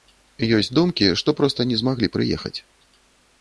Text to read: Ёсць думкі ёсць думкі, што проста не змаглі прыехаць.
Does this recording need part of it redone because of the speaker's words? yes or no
yes